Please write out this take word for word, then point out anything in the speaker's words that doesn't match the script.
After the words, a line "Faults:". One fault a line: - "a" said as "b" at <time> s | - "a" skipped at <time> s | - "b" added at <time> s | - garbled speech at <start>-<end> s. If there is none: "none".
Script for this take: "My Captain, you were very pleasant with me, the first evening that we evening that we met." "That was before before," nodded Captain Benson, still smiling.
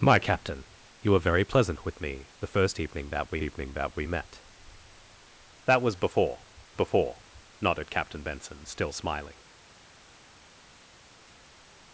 "My Captain, you were very pleasant with me, the first evening that we evening that we met." "That was before before," nodded Captain Benson, still smiling.
Faults:
none